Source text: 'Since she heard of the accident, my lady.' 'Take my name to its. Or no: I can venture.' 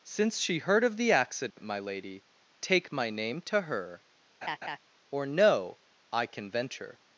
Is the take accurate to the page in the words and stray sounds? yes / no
no